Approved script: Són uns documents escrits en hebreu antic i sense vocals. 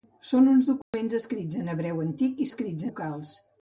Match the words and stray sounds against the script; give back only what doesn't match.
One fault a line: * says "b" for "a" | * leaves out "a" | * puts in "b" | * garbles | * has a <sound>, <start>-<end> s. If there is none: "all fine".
* has a dropout, 0.8-0.9 s
* says "escrits" for "sense"